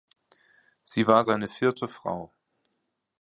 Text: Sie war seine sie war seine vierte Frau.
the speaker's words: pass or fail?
fail